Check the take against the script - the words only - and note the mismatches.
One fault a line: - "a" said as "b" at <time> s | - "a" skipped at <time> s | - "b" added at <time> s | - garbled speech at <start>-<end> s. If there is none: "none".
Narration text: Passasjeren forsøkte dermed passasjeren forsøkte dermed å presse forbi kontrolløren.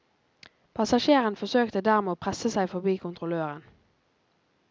- "passasjeren forsøkte dermed" skipped at 2.1 s
- "seg" added at 2.5 s